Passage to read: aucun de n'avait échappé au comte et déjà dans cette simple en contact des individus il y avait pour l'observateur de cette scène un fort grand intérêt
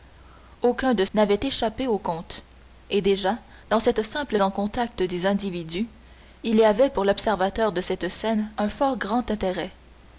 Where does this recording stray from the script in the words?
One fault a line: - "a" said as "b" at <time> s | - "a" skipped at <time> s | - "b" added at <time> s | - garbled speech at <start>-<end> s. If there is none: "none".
none